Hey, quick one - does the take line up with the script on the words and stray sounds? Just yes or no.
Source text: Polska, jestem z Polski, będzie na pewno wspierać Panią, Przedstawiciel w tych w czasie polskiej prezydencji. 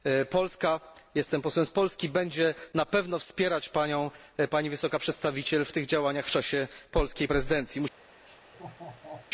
no